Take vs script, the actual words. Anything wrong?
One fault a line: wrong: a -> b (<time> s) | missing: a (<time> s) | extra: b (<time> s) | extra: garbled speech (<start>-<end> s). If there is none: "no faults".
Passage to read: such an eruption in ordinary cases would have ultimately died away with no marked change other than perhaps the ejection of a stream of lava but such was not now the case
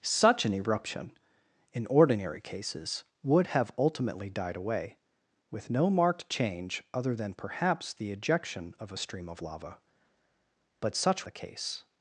missing: was not now (11.2 s)